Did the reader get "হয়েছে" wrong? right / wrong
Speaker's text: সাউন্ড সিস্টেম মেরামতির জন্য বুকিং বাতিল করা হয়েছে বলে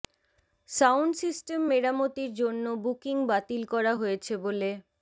right